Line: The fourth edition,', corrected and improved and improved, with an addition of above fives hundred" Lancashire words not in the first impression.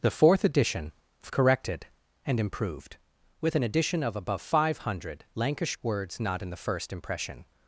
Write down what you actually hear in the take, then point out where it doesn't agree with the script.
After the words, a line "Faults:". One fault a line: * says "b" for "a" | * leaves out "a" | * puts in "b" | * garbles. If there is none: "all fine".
The fourth edition,', corrected and improved, with an addition of above five hundred" Lancashire words not in the first impression.
Faults:
* leaves out "and improved"
* says "five" for "fives"